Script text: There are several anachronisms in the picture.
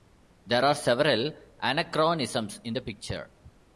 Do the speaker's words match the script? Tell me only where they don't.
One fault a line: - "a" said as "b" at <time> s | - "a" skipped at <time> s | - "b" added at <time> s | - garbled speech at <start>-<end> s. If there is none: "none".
none